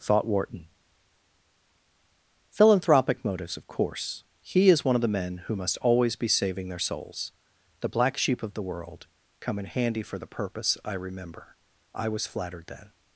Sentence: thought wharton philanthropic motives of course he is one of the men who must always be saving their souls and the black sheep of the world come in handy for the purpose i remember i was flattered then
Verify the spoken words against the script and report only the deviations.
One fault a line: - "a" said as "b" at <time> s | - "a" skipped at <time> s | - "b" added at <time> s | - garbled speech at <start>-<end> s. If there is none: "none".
- "and" skipped at 7.3 s